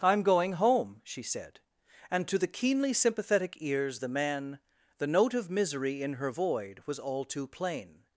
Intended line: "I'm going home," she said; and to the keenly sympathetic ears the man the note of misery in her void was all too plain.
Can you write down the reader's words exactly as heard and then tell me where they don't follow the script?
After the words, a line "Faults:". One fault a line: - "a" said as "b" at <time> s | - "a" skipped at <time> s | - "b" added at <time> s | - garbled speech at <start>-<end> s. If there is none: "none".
"I'm going home," she said; and to the keenly sympathetic ears the man the note of misery in her void was all too plain.
Faults:
none